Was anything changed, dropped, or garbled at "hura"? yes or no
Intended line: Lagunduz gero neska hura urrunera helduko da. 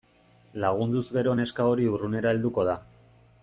yes